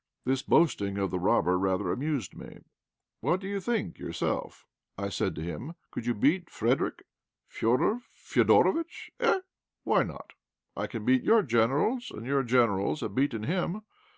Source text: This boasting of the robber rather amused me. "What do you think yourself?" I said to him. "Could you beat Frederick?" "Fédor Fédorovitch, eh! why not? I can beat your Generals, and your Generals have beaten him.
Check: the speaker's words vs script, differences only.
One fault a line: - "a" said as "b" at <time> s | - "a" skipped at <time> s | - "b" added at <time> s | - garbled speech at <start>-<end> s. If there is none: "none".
none